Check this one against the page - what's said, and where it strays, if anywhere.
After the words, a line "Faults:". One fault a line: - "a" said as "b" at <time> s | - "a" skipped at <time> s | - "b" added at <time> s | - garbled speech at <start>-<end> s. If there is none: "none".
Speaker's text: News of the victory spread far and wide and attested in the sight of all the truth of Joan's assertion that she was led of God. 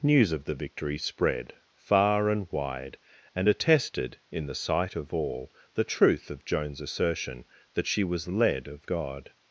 News of the victory spread far and wide and attested in the sight of all the truth of Joan's assertion that she was led of God.
Faults:
none